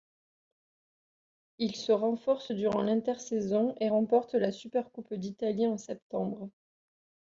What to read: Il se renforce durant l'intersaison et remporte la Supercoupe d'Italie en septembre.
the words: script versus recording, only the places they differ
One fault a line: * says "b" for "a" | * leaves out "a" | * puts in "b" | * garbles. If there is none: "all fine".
all fine